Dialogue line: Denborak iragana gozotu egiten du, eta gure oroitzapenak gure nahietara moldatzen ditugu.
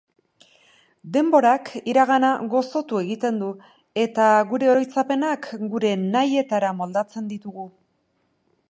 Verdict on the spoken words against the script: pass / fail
pass